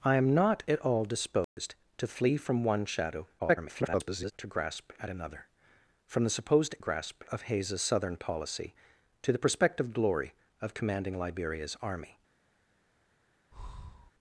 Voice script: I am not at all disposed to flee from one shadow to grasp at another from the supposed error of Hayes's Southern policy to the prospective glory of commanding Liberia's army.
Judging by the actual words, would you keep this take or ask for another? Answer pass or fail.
fail